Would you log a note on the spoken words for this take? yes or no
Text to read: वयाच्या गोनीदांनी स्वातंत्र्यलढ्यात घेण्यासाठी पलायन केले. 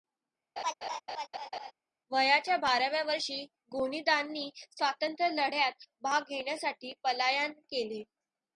yes